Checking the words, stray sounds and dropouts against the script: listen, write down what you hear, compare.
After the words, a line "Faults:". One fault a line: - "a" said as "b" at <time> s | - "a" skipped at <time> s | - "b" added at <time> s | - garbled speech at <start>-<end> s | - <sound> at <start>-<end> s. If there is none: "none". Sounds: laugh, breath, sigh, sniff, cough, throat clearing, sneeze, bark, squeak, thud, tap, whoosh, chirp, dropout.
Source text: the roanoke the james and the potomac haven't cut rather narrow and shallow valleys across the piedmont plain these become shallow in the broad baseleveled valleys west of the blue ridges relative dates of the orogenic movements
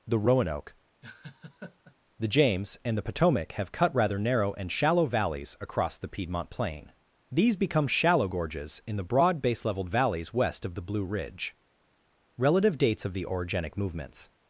the roanoke the james and the potomac have cut rather narrow and shallow valleys across the piedmont plain these become shallow gorges in the broad baseleveled valleys west of the blue ridge relative dates of the orogenic movements
Faults:
- laugh at 1.0-2.0 s
- "haven't" said as "have" at 3.5 s
- "gorges" added at 8.3 s
- "ridges" said as "ridge" at 11.1 s